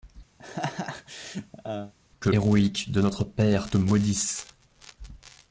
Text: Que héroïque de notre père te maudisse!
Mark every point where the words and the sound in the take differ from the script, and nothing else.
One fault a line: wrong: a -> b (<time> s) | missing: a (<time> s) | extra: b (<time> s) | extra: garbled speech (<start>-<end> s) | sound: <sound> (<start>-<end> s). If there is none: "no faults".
sound: laugh (0.4-1.9 s)